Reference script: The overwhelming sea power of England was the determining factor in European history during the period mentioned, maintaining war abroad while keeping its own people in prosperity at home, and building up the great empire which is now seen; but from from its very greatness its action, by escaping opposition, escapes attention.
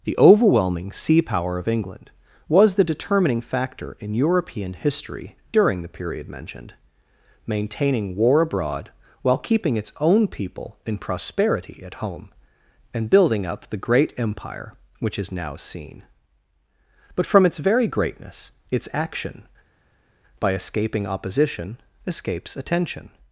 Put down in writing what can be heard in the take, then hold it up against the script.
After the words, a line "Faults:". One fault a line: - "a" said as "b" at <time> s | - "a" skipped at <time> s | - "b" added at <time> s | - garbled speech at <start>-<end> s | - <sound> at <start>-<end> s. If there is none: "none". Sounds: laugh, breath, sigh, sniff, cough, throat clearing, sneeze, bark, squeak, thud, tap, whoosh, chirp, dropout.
The overwhelming sea power of England was the determining factor in European history during the period mentioned, maintaining war abroad while keeping its own people in prosperity at home, and building up the great empire which is now seen; but from its very greatness its action, by escaping opposition, escapes attention.
Faults:
- "from" skipped at 17.4 s